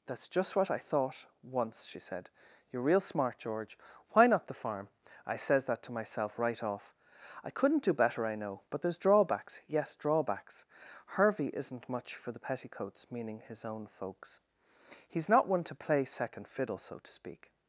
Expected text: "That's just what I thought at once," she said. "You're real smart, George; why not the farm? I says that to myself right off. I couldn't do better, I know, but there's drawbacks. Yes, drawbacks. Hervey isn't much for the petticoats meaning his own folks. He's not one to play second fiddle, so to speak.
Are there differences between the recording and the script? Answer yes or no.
yes